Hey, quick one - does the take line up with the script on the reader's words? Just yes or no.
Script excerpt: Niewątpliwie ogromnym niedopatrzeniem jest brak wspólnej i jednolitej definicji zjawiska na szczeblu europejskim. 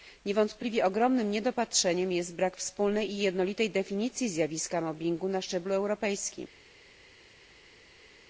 no